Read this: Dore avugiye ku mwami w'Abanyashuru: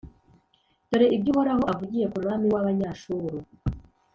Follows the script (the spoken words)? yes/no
no